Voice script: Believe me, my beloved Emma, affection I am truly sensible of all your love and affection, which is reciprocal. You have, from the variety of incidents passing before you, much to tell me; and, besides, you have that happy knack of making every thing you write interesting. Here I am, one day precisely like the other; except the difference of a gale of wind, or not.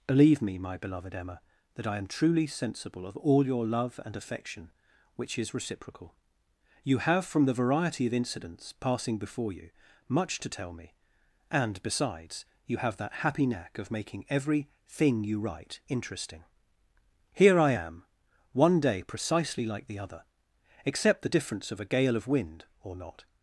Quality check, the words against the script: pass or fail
fail